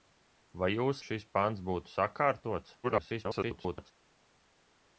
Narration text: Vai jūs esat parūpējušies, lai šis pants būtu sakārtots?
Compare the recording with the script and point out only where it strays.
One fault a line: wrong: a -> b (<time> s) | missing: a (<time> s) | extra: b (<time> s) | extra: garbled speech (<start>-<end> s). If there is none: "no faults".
missing: esat parūpējušies lai (1.0 s)
extra: garbled speech (2.8-3.9 s)